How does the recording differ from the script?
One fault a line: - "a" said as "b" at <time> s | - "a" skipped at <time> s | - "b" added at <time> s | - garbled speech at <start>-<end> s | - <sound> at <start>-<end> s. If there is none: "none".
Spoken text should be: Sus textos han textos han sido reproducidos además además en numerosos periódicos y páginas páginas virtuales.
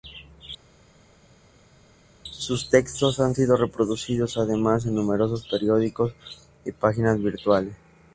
- "textos han" skipped at 3.3 s
- "además" skipped at 4.9 s
- "páginas" skipped at 7.2 s